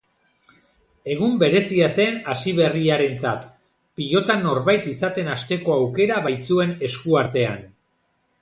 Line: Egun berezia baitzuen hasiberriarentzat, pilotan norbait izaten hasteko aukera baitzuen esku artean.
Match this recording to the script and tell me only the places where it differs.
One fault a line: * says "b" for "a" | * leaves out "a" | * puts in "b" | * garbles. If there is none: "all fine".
* says "zen" for "baitzuen"